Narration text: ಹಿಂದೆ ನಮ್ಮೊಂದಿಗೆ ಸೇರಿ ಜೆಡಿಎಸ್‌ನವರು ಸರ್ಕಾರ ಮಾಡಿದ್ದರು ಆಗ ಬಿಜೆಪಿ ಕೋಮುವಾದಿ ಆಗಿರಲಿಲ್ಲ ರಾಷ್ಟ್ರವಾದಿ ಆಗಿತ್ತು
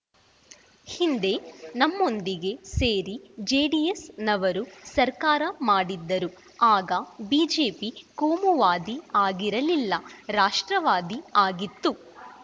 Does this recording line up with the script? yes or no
yes